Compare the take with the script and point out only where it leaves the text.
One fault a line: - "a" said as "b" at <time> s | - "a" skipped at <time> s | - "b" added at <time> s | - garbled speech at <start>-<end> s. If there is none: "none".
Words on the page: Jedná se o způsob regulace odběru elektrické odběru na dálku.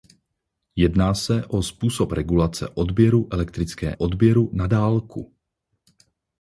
none